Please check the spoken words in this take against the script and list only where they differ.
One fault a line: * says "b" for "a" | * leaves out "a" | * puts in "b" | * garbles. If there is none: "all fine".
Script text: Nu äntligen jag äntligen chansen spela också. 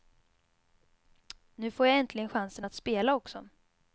* says "får" for "äntligen"
* puts in "att"